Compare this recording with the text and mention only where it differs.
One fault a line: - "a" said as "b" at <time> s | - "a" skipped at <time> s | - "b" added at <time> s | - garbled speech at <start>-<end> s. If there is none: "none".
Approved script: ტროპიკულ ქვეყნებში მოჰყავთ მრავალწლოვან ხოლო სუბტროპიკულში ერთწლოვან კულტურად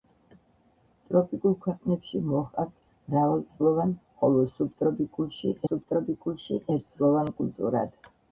- "სუბტროპიკულში" added at 5.7 s